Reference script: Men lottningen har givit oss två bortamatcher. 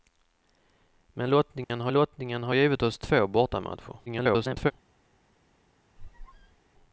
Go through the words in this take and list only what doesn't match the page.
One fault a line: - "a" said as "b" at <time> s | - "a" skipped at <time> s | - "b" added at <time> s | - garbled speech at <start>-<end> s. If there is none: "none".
- "lottningen har" added at 1.9 s
- garbled speech at 4.1-4.7 s